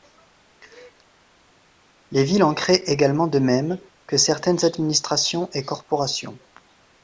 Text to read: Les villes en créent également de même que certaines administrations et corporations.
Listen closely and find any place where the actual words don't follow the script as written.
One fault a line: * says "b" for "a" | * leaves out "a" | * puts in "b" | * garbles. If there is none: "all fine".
all fine